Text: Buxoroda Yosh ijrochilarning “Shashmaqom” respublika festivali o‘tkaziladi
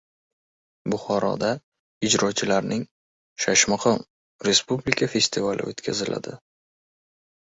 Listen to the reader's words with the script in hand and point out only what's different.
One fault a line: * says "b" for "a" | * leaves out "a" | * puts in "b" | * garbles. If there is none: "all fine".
* leaves out "Yosh"